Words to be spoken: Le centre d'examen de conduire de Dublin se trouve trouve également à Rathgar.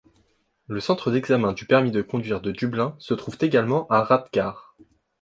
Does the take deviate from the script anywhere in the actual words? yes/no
yes